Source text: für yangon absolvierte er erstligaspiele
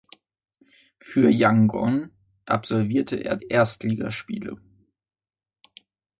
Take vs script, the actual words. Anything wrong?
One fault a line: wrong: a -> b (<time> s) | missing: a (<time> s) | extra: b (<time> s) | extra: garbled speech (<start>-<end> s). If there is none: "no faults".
no faults